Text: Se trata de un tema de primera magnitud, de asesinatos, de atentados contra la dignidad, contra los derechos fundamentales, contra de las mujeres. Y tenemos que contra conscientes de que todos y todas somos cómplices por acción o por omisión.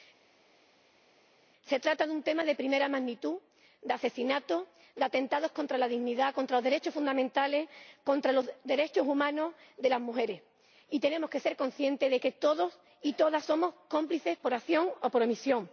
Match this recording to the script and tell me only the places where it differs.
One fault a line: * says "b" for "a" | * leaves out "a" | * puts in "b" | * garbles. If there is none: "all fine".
* puts in "los derechos humanos"
* says "ser" for "contra"